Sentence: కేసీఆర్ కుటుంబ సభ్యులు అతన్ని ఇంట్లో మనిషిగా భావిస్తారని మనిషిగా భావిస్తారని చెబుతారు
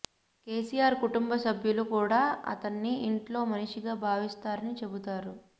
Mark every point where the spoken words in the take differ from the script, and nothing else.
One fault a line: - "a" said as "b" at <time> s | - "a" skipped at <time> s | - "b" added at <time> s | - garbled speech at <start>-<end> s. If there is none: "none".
- "కూడా" added at 1.9 s
- "మనిషిగా భావిస్తారని" skipped at 4.8 s